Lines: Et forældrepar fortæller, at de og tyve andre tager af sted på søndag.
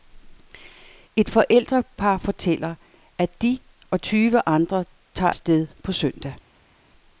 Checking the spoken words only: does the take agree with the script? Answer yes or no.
no